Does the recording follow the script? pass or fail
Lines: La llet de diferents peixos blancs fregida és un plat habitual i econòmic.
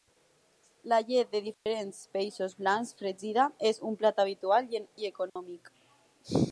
pass